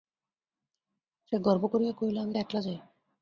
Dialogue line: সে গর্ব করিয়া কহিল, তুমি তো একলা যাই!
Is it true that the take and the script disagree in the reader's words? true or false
true